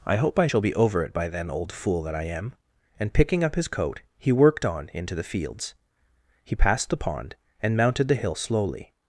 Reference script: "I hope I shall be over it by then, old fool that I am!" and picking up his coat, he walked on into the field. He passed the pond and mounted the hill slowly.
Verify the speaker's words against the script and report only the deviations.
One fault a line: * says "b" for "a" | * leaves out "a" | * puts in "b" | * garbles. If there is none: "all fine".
* says "worked" for "walked"
* says "fields" for "field"